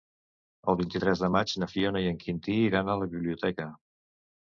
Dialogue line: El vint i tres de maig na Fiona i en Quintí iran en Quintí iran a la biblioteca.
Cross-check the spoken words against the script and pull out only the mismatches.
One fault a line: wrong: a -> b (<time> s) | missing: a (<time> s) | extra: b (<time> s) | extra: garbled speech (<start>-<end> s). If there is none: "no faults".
missing: en Quintí iran (2.9 s)